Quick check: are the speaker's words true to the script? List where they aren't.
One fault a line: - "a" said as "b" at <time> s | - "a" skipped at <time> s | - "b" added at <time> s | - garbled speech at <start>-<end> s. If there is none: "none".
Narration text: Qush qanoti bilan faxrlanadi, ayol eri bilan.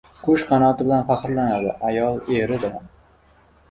none